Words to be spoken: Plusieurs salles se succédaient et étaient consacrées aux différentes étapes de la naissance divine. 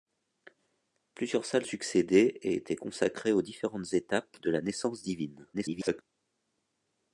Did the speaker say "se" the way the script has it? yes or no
no